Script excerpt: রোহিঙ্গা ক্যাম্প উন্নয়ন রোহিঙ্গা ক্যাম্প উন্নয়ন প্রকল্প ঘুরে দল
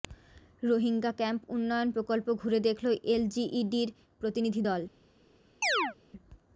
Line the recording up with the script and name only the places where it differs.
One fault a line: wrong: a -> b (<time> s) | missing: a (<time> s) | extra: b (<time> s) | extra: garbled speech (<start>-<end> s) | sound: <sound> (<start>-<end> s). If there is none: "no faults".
wrong: রোহিঙ্গা ক্যাম্প উন্নয়ন প্রকল্প ঘুরে -> প্রকল্প ঘুরে দেখল এলজিইডির প্রতিনিধি (1.9 s)
sound: chirp (5.6-6.0 s)